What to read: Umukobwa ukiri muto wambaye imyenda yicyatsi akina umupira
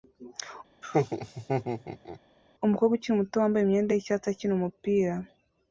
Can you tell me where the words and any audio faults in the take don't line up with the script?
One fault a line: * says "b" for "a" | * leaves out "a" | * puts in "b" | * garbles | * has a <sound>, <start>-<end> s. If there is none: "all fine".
* has a laugh, 0.8-2.2 s